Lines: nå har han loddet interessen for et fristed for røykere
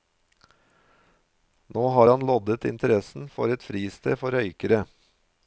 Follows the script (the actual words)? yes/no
yes